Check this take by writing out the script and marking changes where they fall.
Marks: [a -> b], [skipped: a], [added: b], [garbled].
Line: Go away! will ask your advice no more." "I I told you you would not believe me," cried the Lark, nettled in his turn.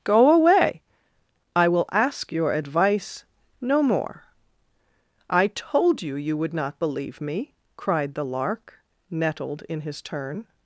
Go away! [added: I] will ask your advice no more." "I [skipped: I] told you you would not believe me," cried the Lark, nettled in his turn.